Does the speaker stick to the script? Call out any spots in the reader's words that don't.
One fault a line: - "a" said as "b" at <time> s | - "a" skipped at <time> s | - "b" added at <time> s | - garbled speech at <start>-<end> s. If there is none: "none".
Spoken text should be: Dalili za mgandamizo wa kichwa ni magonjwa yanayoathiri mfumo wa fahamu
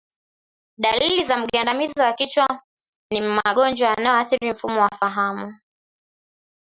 none